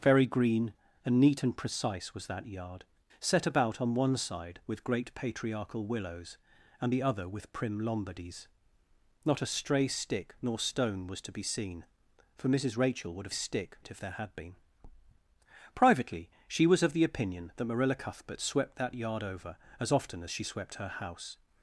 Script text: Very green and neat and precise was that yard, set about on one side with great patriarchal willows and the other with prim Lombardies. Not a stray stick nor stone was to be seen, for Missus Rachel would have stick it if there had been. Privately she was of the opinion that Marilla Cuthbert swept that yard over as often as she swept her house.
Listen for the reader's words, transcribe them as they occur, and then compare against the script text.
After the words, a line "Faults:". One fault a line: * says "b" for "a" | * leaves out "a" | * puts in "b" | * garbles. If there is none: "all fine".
Very green and neat and precise was that yard, set about on one side with great patriarchal willows and the other with prim Lombardies. Not a stray stick nor stone was to be seen, for Missus Rachel would have stick it if there had been. Privately she was of the opinion that Marilla Cuthbert swept that yard over as often as she swept her house.
Faults:
all fine